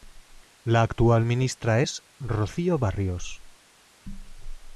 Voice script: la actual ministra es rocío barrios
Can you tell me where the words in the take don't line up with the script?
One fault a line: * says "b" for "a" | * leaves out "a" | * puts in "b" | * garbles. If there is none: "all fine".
all fine